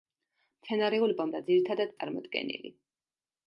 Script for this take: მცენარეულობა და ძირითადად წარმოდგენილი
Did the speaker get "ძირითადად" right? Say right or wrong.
right